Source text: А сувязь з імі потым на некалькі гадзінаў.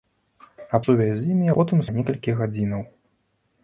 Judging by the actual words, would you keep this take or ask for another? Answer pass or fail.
pass